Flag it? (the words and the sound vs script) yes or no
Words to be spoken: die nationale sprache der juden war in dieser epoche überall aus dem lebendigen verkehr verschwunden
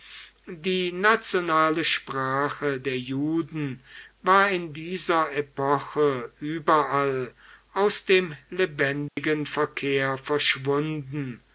yes